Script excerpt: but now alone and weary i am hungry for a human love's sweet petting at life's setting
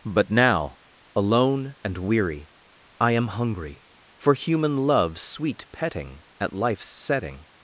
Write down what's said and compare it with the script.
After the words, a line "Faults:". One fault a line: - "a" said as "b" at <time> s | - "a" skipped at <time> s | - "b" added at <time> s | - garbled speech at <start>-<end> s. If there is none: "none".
but now alone and weary i am hungry for human love's sweet petting at life's setting
Faults:
- "a" skipped at 4.3 s